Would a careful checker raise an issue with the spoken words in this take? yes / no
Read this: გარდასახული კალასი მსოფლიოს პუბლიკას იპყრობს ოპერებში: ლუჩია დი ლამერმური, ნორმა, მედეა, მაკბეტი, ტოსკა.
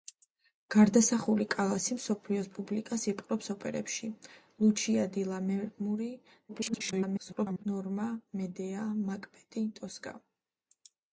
yes